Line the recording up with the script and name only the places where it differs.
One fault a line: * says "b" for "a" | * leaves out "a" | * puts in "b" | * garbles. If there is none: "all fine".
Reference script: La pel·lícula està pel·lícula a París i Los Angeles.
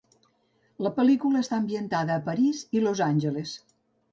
* says "ambientada" for "pel·lícula"